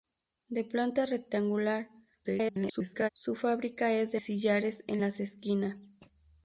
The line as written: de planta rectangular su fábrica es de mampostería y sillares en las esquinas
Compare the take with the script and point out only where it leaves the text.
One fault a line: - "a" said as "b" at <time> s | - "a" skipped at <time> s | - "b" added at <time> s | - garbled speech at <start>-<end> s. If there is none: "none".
- garbled speech at 2.2-3.1 s
- "mampostería y" skipped at 4.2 s